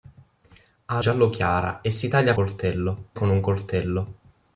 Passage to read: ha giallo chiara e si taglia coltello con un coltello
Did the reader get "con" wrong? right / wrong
right